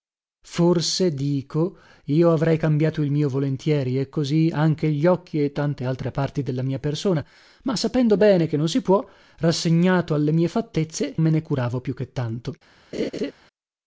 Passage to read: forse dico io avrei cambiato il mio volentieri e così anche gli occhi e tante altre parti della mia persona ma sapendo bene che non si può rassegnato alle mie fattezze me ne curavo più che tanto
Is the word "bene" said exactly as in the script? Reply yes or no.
yes